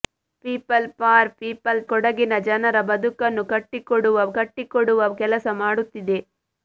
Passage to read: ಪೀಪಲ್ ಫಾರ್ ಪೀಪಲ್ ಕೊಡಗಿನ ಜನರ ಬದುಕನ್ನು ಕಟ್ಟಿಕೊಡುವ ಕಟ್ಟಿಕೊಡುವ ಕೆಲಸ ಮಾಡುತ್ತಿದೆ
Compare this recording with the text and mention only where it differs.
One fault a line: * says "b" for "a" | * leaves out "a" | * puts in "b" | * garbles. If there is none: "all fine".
all fine